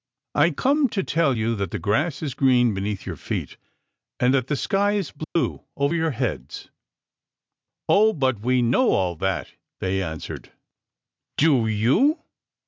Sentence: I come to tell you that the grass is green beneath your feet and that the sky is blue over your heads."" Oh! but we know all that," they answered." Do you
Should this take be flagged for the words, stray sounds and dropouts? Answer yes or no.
yes